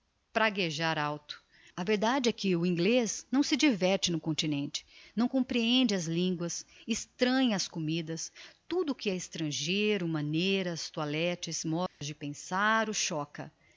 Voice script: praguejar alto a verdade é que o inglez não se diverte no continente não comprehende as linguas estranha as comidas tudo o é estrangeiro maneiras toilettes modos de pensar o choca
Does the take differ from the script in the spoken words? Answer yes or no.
yes